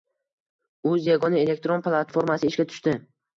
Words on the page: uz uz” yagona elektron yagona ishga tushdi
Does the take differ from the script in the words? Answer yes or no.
yes